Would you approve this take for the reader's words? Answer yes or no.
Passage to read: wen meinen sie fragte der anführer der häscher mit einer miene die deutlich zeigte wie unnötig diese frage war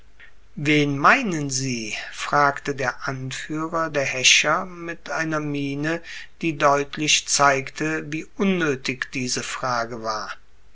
yes